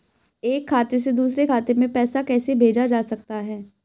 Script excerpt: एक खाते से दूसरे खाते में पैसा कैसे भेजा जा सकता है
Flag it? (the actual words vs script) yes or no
no